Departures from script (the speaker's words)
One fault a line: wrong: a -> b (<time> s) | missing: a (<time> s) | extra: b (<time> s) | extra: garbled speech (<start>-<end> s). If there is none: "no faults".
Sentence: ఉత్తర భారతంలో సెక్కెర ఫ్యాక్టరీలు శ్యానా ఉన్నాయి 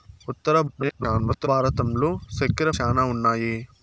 extra: garbled speech (0.7-1.5 s)
missing: ఫ్యాక్టరీలు (2.7 s)